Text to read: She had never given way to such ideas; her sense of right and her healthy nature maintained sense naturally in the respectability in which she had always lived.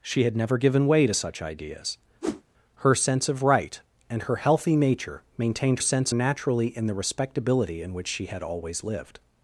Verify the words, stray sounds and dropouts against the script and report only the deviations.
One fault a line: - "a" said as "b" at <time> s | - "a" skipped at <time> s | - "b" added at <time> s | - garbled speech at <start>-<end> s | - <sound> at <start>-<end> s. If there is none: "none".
- whoosh at 2.2-2.4 s